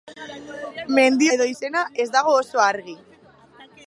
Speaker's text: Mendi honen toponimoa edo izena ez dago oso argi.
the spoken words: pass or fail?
fail